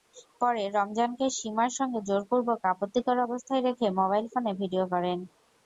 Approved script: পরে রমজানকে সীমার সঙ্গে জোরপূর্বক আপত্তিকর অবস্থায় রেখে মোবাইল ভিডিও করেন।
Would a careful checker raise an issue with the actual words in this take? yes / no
yes